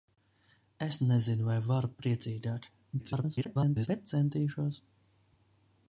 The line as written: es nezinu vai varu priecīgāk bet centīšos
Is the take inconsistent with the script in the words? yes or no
yes